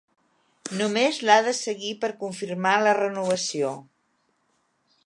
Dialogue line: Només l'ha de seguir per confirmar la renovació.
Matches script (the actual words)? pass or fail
pass